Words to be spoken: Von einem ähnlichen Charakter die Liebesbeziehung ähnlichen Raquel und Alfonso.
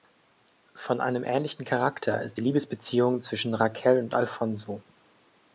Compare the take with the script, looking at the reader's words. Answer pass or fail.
fail